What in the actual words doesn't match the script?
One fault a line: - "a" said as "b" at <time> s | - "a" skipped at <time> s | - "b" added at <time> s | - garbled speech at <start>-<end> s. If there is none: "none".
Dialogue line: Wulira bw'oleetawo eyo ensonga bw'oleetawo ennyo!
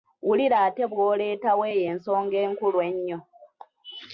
- "ate" added at 0.7 s
- "bw'oleetawo" said as "enkulu" at 2.5 s